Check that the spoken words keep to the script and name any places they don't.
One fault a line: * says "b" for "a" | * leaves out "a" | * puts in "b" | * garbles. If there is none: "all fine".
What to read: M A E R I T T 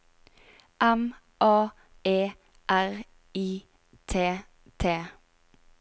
all fine